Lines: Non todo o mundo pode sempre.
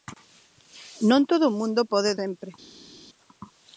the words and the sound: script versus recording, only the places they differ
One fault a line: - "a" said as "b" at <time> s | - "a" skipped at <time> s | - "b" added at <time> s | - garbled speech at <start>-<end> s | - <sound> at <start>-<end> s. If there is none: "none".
none